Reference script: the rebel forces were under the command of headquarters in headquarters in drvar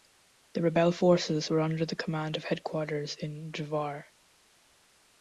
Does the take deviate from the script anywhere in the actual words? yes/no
yes